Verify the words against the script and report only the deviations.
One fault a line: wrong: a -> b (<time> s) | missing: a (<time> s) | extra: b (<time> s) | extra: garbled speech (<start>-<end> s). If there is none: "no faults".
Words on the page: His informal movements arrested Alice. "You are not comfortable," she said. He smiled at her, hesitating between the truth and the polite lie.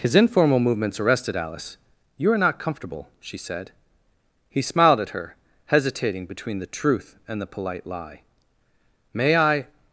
extra: May I (9.1 s)